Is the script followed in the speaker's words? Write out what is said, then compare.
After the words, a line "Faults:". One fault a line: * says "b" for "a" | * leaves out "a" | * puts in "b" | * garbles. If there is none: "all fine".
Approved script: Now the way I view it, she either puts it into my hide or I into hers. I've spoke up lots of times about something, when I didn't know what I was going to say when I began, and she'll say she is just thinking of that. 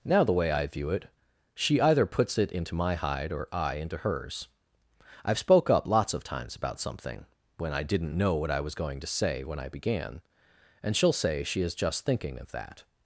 Now the way I view it, she either puts it into my hide or I into hers. I've spoke up lots of times about something, when I didn't know what I was going to say when I began, and she'll say she is just thinking of that.
Faults:
all fine